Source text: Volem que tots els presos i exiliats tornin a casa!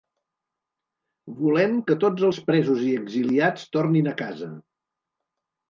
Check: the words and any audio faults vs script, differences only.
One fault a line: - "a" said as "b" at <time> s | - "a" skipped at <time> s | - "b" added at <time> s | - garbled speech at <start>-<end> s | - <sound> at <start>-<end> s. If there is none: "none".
none